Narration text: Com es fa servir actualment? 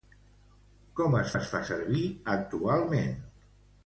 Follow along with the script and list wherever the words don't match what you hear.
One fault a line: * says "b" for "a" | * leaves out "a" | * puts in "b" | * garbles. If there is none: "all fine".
* puts in "es"